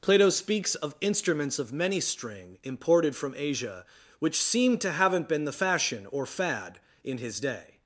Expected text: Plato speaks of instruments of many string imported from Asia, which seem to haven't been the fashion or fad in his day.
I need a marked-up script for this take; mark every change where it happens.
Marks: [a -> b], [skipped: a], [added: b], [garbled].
Plato speaks of instruments of many string imported from Asia, which seem to haven't been the fashion or fad in his day.